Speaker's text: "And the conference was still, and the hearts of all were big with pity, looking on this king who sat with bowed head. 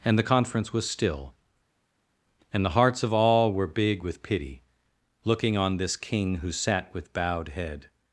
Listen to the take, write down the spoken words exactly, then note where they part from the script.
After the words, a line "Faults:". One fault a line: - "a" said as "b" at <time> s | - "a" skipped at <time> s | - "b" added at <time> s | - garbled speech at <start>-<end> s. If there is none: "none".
"And the conference was still, and the hearts of all were big with pity, looking on this king who sat with bowed head.
Faults:
none